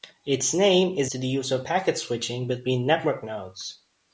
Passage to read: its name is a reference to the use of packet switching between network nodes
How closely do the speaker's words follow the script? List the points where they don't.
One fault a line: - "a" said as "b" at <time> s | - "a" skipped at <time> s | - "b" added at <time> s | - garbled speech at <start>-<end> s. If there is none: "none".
- "a reference" skipped at 1.1 s